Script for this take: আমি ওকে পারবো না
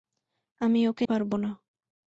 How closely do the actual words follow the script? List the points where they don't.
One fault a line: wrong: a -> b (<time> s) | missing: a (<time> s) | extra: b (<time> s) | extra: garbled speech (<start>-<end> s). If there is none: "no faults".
no faults